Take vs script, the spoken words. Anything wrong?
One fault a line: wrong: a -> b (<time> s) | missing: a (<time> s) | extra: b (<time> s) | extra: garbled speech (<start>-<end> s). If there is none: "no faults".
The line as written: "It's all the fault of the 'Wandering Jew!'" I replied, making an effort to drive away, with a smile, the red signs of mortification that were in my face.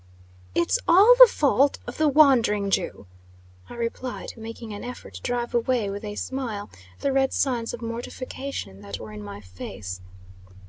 no faults